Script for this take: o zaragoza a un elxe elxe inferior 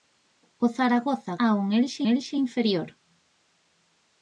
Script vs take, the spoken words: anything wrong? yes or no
no